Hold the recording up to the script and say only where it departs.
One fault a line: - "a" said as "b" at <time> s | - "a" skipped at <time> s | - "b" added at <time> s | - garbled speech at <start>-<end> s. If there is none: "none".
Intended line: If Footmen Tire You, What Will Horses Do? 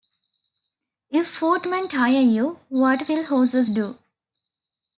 none